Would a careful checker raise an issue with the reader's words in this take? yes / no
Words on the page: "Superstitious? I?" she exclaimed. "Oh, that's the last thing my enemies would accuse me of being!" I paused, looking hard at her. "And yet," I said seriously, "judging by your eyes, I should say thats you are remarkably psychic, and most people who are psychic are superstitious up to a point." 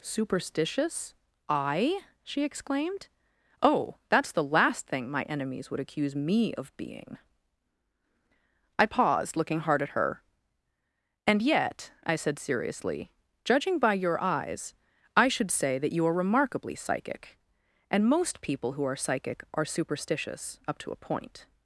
yes